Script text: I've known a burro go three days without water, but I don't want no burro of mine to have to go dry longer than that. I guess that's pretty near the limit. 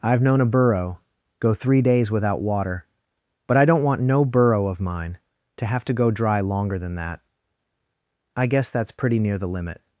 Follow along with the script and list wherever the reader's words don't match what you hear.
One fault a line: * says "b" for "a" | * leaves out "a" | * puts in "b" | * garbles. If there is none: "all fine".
all fine